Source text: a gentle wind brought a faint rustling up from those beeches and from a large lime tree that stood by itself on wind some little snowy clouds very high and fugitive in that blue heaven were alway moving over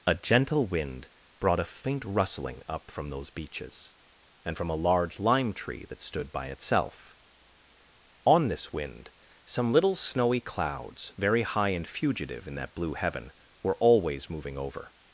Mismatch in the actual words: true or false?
true